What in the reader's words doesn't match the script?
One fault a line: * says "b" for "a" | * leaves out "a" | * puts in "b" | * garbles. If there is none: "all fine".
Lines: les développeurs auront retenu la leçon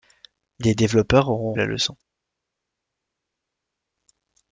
* leaves out "retenu"